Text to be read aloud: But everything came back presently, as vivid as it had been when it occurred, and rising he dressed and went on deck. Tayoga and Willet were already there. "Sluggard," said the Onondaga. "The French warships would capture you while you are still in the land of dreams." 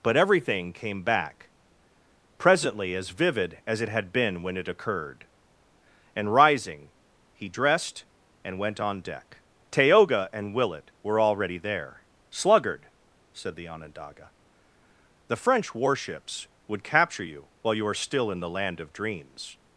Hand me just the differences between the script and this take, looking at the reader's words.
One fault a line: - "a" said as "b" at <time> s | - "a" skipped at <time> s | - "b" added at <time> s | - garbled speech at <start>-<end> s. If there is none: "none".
none